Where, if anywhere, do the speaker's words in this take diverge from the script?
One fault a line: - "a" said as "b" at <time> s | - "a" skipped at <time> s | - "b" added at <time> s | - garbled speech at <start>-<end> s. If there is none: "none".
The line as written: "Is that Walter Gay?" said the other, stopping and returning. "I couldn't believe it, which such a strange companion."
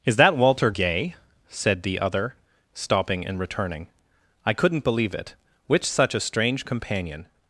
none